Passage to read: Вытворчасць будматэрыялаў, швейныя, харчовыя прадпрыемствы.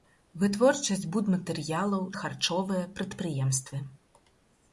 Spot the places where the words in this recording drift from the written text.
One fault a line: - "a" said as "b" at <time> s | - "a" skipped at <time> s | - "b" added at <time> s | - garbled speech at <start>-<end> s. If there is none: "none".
- "швейныя" skipped at 2.1 s